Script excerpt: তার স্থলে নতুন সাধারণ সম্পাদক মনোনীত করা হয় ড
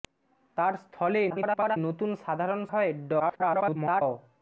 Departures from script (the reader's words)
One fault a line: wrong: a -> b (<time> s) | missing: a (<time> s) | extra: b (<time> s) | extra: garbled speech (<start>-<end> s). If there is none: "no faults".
extra: garbled speech (1.3-1.8 s)
missing: সম্পাদক মনোনীত করা (2.6 s)
extra: garbled speech (3.2-4.0 s)